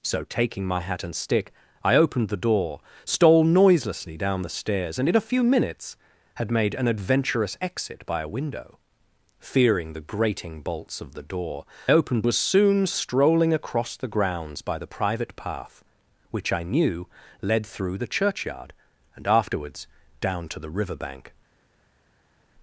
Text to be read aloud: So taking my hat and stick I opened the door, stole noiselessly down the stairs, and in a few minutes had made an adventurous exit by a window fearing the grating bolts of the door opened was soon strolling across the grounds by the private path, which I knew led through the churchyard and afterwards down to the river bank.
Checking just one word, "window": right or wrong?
right